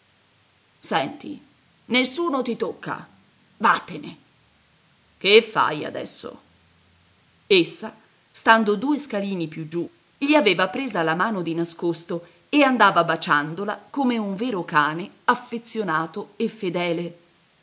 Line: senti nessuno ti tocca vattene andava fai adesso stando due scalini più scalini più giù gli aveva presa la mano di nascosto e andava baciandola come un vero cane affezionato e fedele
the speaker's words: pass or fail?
fail